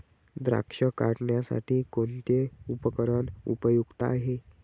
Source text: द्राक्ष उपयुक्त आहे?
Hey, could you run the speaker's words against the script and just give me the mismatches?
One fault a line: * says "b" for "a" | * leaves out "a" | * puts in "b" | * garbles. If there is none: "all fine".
* puts in "काढणीसाठी कोणते उपकरण"